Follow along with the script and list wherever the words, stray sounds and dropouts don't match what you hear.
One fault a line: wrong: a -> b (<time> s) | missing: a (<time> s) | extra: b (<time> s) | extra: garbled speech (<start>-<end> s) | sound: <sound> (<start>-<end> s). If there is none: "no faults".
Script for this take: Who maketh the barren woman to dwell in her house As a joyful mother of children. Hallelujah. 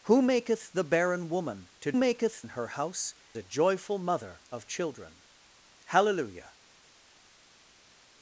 wrong: dwell -> maketh (2.0 s)
missing: As (3.1 s)